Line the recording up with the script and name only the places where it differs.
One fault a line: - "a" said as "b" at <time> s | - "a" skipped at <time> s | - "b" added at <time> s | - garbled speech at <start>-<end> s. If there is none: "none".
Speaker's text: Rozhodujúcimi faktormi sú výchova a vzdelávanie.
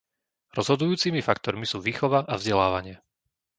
none